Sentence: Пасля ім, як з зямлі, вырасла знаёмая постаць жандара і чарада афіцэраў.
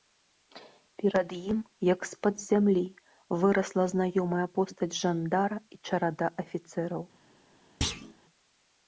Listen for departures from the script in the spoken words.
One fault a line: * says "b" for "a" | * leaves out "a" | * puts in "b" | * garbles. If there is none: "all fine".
* says "Перад" for "Пасля"
* puts in "пад"